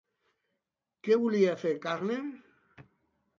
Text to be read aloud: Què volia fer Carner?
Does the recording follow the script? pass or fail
pass